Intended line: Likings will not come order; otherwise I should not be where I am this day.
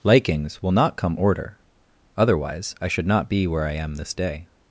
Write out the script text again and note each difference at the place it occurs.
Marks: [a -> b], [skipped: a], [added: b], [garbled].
Likings will not come order; otherwise I should not be where I am this day.